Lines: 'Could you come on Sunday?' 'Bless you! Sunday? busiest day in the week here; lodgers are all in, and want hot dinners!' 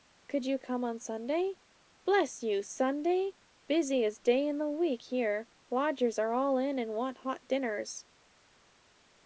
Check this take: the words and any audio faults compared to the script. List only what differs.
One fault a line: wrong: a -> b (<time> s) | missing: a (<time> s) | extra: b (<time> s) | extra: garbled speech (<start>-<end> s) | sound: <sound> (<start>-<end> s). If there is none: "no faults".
no faults